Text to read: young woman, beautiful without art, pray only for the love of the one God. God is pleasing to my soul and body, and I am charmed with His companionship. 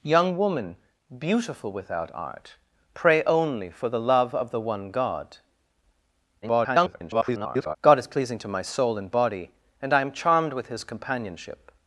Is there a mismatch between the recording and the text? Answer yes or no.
yes